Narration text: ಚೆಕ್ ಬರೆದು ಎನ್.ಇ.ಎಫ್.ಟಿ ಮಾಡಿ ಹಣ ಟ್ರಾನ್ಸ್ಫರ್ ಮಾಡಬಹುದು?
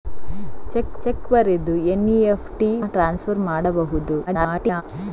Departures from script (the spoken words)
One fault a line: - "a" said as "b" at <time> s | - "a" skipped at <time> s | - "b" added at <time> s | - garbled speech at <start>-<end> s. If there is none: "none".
- "ಚೆಕ್" added at 1.0 s
- "ಮಾಡಿ ಹಣ" skipped at 2.7 s
- garbled speech at 4.3-4.8 s